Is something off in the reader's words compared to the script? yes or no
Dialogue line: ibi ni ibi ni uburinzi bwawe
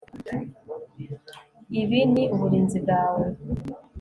yes